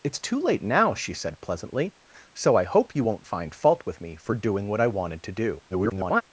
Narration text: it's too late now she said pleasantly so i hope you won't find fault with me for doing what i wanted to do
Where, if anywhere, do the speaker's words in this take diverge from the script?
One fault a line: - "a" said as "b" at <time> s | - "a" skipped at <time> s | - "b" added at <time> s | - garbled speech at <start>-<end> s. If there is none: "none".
- garbled speech at 5.7-6.2 s